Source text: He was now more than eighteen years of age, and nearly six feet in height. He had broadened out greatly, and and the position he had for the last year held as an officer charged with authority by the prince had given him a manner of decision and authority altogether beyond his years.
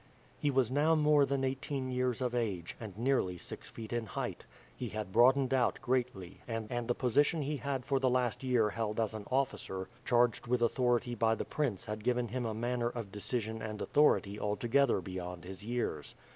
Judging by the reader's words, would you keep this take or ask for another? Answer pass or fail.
pass